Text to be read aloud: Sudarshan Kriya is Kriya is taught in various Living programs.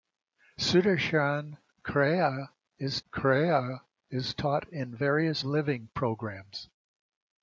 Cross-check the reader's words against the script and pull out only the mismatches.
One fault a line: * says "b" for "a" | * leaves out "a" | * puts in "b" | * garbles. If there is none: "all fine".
all fine